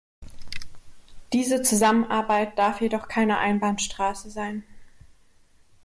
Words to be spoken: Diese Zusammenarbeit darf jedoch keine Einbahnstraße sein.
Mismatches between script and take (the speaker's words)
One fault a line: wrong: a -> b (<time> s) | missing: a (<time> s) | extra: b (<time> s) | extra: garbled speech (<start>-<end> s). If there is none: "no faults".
no faults